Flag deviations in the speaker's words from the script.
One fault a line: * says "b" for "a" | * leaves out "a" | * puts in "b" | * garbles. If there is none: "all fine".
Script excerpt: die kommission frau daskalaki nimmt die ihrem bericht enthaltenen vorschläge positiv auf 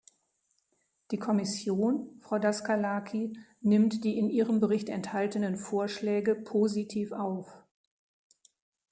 * puts in "in"